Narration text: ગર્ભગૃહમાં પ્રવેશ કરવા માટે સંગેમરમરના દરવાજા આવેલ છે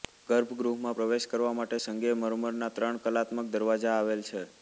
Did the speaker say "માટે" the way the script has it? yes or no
yes